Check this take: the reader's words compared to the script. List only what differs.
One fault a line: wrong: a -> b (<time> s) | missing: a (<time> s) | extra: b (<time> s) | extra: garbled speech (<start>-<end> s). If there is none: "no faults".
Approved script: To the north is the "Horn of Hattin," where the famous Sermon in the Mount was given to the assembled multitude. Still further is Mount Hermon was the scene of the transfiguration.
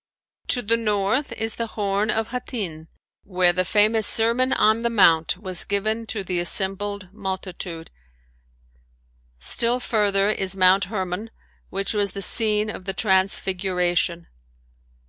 wrong: in -> on (4.5 s)
extra: which (11.7 s)